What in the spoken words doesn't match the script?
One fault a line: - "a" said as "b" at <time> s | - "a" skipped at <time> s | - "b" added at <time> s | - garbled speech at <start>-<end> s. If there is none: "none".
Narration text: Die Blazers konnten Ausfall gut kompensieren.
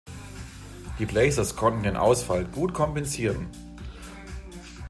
- "den" added at 1.8 s